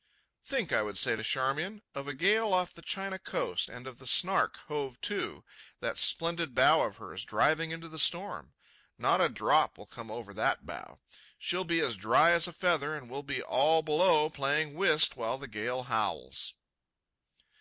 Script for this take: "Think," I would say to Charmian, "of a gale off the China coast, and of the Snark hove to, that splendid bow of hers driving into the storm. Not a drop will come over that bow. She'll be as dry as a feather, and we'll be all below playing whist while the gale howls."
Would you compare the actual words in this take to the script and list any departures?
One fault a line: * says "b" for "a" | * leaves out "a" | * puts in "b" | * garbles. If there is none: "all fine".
all fine